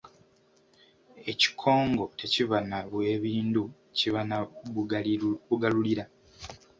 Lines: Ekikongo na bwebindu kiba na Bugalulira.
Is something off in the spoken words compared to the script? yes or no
yes